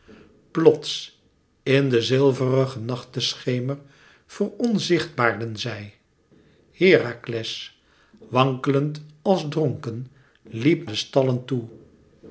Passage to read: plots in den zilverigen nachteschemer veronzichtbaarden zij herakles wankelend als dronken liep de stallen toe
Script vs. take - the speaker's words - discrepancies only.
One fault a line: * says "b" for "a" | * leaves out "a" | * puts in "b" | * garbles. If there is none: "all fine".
all fine